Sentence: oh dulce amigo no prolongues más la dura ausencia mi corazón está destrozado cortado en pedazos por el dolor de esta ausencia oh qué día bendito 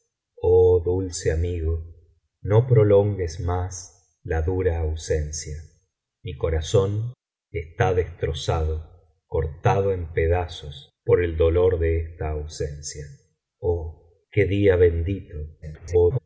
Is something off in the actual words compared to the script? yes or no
yes